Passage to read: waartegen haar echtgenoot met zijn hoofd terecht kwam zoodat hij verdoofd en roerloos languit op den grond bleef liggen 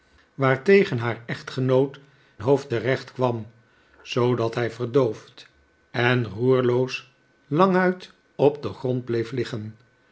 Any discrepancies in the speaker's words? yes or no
yes